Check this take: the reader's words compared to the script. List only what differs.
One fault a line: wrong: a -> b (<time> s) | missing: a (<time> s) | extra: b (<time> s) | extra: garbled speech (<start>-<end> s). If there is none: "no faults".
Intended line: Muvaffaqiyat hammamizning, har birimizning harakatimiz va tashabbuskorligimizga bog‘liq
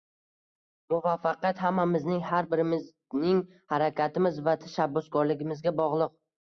no faults